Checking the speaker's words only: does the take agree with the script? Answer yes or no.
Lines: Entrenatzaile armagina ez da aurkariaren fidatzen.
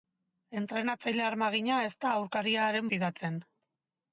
yes